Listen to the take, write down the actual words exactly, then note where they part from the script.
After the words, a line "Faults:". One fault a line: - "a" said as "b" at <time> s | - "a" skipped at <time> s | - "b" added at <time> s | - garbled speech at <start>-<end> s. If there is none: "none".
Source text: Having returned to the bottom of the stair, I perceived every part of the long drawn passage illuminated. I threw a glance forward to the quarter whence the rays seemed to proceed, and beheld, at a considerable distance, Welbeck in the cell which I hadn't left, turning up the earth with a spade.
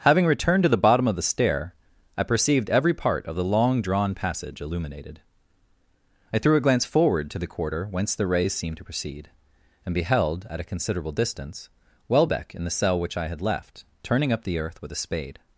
Having returned to the bottom of the stair, I perceived every part of the long drawn passage illuminated. I threw a glance forward to the quarter whence the rays seemed to proceed, and beheld, at a considerable distance, Welbeck in the cell which I had left, turning up the earth with a spade.
Faults:
- "hadn't" said as "had" at 13.3 s